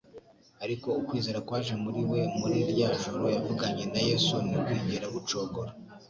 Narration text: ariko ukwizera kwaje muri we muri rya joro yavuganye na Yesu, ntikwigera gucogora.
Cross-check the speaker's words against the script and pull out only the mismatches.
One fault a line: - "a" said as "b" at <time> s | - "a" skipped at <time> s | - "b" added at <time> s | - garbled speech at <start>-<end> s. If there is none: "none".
none